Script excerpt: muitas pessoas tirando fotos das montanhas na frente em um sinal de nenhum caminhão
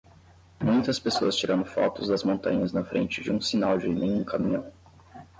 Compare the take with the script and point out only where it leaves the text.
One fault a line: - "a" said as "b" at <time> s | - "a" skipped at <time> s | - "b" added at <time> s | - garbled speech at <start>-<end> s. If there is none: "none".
- "em" said as "de" at 3.2 s